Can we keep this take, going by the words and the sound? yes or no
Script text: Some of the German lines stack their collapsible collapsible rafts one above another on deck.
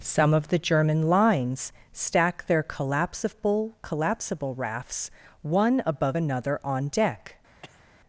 no